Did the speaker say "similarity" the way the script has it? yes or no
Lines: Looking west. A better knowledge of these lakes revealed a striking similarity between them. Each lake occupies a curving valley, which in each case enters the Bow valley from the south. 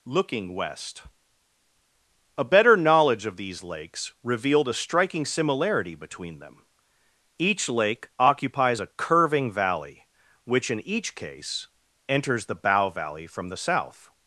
yes